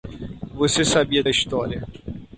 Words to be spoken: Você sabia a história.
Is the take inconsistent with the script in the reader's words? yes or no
no